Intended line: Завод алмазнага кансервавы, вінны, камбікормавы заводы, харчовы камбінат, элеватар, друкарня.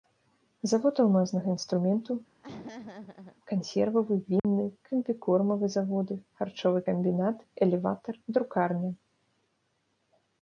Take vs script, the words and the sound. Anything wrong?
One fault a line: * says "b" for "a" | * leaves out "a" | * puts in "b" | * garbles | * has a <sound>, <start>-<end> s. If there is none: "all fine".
* puts in "інструменту"
* has a laugh, 2.4-3.4 s
* has a dropout, 4.4-4.4 s